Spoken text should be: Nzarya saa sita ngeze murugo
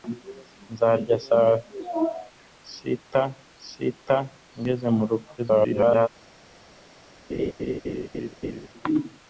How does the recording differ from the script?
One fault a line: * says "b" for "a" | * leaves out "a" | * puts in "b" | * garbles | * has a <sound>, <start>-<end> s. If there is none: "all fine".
* puts in "sita"
* garbles
* has a laugh, 7.3-8.7 s